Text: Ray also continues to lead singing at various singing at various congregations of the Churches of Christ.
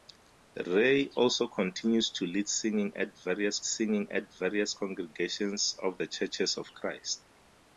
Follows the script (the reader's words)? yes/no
yes